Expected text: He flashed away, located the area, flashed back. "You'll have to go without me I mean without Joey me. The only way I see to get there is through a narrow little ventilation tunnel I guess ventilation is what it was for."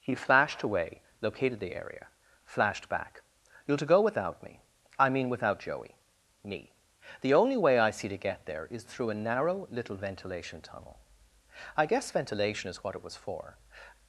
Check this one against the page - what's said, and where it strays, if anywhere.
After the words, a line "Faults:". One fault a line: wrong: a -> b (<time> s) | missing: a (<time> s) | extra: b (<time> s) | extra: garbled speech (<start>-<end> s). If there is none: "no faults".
He flashed away, located the area, flashed back. "You'll to go without me I mean without Joey me. The only way I see to get there is through a narrow little ventilation tunnel I guess ventilation is what it was for."
Faults:
missing: have (3.8 s)